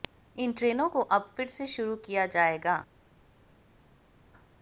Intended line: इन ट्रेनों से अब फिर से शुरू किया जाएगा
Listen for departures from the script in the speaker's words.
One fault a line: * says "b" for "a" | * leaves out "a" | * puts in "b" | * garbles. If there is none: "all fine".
* says "को" for "से"